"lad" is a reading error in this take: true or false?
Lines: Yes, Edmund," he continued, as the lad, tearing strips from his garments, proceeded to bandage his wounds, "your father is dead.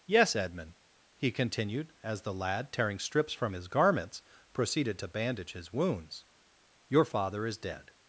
false